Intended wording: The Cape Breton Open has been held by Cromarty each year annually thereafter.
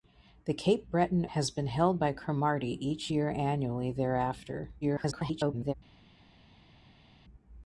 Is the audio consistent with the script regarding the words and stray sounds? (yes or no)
no